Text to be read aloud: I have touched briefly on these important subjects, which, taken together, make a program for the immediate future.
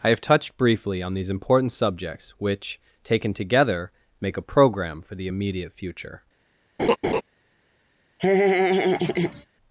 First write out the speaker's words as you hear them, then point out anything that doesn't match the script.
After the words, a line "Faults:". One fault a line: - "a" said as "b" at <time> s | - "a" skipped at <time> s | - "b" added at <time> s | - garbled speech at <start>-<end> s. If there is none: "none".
I have touched briefly on these important subjects, which, taken together, make a program for the immediate future.
Faults:
none